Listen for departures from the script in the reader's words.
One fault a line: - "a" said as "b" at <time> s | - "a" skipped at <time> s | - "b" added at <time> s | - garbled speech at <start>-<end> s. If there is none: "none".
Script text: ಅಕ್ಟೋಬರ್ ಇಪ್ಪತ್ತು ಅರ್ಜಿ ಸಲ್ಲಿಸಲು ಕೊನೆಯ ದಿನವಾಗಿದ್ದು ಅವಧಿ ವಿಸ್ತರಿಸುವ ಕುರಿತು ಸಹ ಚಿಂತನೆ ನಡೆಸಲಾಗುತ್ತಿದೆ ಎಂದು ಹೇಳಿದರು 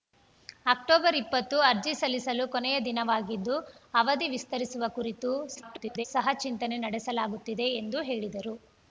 - garbled speech at 5.5-6.1 s